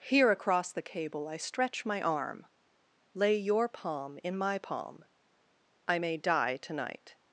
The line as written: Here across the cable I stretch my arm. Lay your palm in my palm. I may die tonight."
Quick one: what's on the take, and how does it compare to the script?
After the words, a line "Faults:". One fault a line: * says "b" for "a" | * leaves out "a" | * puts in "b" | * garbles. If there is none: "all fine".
Here across the cable I stretch my arm. Lay your palm in my palm. I may die tonight."
Faults:
all fine